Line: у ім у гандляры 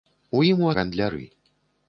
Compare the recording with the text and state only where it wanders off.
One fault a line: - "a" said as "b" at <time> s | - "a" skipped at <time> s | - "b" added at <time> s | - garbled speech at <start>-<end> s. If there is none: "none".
none